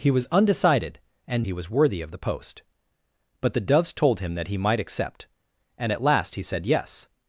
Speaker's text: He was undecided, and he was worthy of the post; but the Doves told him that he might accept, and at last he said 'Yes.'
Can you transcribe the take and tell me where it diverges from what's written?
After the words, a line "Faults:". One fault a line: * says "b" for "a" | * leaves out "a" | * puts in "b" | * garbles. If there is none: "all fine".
He was undecided, and he was worthy of the post; but the Doves told him that he might accept, and at last he said 'Yes.'
Faults:
all fine